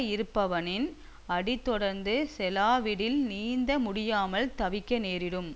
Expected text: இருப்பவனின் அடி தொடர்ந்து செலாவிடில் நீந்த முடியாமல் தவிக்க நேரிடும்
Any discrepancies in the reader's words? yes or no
no